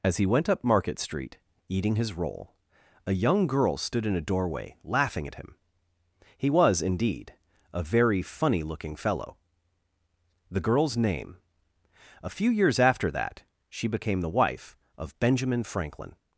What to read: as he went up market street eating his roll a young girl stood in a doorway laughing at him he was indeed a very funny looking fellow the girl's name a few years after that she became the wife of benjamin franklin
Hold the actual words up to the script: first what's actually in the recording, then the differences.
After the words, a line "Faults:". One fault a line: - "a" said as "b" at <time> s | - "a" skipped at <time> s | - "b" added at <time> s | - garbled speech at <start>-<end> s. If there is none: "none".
as he went up market street eating his roll a young girl stood in a doorway laughing at him he was indeed a very funny looking fellow the girl's name a few years after that she became the wife of benjamin franklin
Faults:
none